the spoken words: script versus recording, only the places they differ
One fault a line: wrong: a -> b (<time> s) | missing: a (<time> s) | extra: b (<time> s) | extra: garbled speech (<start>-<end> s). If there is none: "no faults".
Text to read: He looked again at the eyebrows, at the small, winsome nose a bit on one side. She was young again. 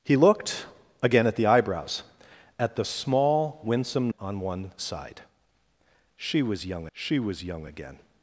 wrong: nose a bit on one side -> on one side She was young (4.2 s)